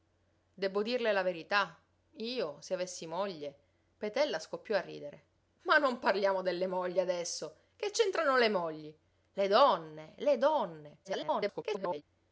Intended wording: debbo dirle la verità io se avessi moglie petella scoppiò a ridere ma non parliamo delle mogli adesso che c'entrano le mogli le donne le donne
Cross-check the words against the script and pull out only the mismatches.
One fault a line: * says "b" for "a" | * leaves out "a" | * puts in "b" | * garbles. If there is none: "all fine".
* garbles